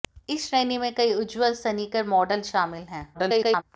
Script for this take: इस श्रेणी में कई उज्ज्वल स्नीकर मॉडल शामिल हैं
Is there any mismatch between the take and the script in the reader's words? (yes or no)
yes